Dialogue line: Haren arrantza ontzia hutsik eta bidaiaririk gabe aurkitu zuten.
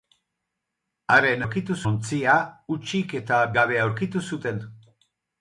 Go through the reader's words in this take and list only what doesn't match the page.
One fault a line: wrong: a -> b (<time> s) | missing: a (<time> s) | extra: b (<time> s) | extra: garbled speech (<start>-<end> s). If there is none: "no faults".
wrong: arrantza -> aurkitu (1.4 s)
missing: bidaiaririk (3.4 s)